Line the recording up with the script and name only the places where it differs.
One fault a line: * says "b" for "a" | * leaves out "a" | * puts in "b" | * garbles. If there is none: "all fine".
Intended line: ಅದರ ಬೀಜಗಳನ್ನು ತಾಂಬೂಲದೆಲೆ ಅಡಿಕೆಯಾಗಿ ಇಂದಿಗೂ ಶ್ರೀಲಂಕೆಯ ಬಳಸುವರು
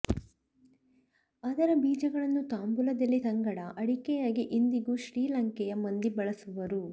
* puts in "ಸಂಗಡ"
* puts in "ಮಂದಿ"